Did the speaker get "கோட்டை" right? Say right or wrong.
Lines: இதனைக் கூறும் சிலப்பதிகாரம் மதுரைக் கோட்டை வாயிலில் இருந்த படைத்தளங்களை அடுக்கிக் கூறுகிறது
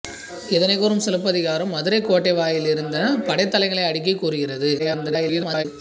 right